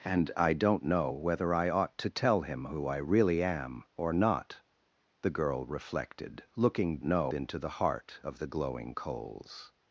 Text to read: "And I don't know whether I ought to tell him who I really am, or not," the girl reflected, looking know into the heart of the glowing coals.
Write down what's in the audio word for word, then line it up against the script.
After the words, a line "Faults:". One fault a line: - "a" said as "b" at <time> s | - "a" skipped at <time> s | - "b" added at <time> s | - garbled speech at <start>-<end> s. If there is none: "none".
"And I don't know whether I ought to tell him who I really am, or not," the girl reflected, looking know into the heart of the glowing coals.
Faults:
none